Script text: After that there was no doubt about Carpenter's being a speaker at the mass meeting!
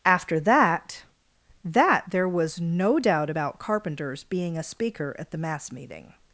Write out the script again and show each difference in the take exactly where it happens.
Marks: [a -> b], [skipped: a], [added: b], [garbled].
After that [added: that] there was no doubt about Carpenter's being a speaker at the mass meeting!